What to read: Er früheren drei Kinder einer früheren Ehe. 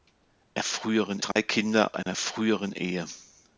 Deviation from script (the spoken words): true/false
false